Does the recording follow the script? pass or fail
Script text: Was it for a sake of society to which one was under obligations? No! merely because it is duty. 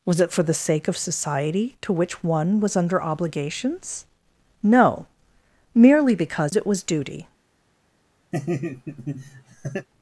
fail